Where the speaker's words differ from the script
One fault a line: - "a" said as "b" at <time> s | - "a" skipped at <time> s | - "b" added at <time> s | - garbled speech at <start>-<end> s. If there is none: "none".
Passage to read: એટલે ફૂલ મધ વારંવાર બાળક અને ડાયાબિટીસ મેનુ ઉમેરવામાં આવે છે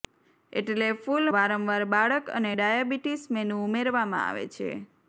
- "મધ" skipped at 1.2 s